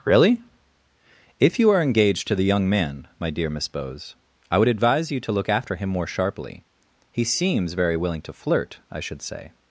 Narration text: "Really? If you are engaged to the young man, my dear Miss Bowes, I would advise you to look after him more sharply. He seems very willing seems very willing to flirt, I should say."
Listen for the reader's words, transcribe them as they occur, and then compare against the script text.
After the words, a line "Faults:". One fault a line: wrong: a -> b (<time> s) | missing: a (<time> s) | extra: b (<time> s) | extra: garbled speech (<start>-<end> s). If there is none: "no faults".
"Really? If you are engaged to the young man, my dear Miss Bowes, I would advise you to look after him more sharply. He seems very willing to flirt, I should say."
Faults:
missing: seems very willing (8.2 s)